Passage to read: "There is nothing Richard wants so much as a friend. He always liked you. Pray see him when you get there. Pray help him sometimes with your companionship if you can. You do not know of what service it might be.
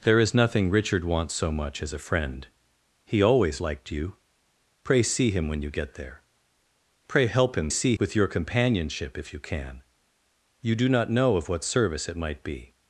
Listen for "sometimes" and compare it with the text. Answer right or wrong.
wrong